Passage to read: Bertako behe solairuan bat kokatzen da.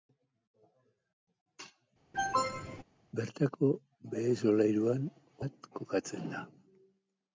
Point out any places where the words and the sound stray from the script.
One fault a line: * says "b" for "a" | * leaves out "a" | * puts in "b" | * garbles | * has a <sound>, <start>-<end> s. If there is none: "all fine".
* has a cough, 2.1-2.8 s